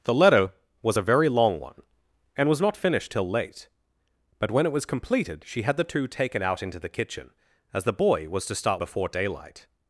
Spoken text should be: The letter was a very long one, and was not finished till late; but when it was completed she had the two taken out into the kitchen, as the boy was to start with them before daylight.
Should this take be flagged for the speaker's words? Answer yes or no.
yes